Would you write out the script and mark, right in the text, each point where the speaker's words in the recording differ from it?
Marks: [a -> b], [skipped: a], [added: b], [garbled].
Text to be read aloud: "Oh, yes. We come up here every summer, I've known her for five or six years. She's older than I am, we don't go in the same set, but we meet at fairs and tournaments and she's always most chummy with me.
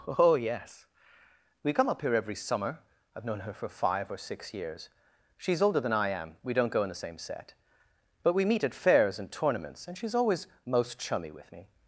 "Oh, yes. We come up here every summer, I've known her for five or six years. She's older than I am, we don't go in the same set, but we meet at fairs and tournaments and she's always most chummy with me.